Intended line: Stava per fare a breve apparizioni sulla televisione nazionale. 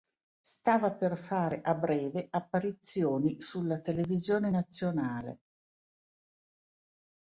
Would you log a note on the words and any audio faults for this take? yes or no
no